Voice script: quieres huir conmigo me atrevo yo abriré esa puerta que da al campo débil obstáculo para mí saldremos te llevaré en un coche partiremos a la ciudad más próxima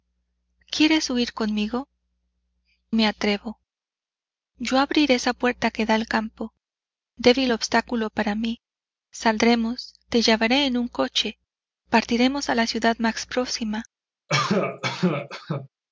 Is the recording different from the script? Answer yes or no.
no